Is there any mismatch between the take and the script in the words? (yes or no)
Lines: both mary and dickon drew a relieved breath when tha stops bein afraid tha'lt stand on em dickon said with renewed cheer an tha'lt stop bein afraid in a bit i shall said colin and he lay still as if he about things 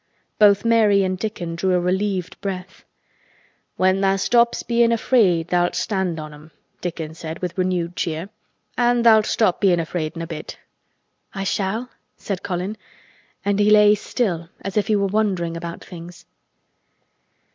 yes